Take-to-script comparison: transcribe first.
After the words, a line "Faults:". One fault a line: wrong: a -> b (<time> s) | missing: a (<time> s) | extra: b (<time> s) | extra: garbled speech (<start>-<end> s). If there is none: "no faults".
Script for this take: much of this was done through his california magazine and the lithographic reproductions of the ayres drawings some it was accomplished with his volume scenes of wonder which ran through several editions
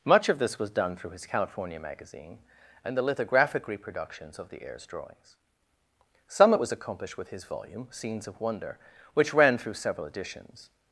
much of this was done through his california magazine and the lithographic reproductions of the ayres drawings some it was accomplished with his volume scenes of wonder which ran through several editions
Faults:
no faults